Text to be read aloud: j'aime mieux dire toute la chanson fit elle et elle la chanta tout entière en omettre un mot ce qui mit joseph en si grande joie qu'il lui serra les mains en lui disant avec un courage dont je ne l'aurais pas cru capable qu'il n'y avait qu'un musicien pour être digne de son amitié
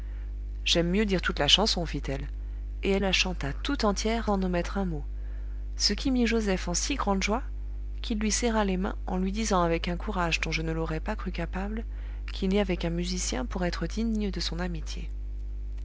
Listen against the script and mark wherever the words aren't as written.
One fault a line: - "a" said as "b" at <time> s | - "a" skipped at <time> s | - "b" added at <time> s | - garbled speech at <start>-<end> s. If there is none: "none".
none